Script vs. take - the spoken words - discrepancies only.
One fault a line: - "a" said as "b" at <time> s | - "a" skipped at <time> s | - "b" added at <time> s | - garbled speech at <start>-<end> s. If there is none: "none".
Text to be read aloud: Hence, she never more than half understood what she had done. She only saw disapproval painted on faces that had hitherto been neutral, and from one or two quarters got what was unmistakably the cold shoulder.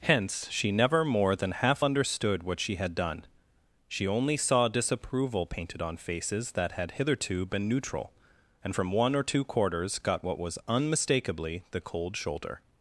none